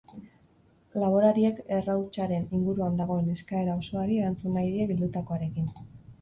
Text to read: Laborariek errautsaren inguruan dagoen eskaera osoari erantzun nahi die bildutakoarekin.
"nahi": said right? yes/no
yes